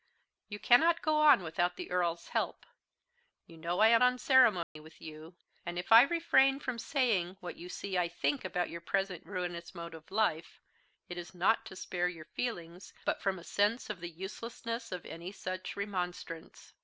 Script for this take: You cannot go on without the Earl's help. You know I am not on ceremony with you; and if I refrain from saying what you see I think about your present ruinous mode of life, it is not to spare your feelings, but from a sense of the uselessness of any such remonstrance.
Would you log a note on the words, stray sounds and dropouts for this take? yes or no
yes